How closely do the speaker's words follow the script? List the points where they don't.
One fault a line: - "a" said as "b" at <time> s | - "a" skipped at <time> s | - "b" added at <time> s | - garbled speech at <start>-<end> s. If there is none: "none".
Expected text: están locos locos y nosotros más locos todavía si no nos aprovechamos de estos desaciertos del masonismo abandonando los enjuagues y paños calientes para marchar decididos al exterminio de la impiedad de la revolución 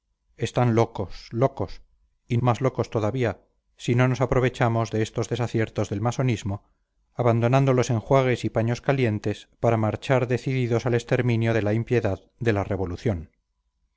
- "nosotros" skipped at 2.4 s